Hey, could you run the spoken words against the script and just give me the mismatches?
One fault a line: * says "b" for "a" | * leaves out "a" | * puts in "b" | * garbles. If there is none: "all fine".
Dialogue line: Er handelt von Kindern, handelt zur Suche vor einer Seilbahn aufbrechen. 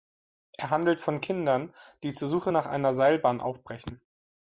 * says "die" for "handelt"
* says "nach" for "vor"